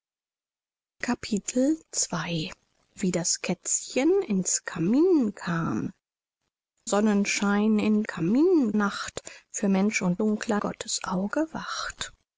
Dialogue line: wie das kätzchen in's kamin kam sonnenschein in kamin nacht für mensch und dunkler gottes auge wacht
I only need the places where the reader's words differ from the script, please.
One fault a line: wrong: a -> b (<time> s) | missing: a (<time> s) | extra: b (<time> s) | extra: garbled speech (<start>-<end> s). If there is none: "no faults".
no faults